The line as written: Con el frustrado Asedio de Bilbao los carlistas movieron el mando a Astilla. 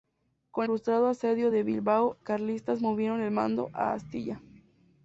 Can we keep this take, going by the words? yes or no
no